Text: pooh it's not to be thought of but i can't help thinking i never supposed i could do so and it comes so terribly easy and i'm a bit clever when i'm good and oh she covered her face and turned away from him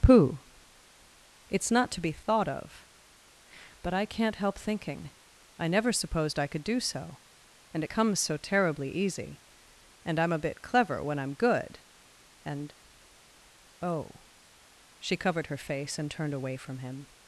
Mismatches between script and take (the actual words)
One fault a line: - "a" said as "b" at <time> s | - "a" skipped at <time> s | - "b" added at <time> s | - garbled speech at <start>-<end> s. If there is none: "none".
none